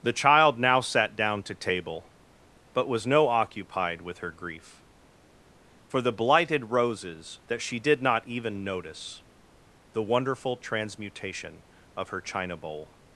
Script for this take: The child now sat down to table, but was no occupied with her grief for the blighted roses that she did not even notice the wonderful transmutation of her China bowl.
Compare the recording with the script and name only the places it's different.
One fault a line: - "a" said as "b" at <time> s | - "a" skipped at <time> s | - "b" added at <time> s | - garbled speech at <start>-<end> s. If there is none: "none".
none